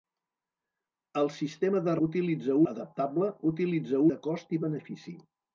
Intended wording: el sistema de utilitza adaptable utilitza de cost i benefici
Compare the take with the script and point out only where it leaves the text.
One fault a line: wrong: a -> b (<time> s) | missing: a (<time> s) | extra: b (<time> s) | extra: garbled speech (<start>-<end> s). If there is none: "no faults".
no faults